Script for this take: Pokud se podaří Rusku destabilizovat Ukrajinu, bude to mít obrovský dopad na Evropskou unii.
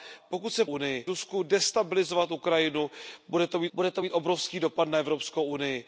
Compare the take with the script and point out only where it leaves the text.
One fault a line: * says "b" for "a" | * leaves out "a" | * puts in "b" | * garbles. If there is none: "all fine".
* says "unii" for "podaří"
* puts in "bude to mít"